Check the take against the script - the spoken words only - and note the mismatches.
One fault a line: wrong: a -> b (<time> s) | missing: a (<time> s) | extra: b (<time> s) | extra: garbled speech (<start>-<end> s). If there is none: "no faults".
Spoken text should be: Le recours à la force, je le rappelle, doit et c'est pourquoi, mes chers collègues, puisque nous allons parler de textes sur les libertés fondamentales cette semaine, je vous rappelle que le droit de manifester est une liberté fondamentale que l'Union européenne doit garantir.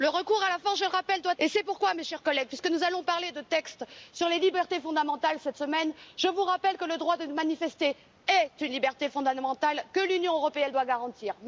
no faults